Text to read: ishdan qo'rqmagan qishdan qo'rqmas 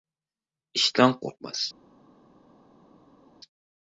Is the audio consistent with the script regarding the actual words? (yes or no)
no